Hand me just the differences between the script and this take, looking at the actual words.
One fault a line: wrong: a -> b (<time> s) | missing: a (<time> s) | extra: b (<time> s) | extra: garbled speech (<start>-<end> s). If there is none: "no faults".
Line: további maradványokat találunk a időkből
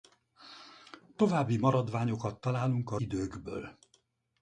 no faults